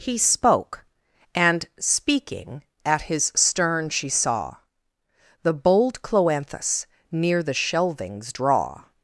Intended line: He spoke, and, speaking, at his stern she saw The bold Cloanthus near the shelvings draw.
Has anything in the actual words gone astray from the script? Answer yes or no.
no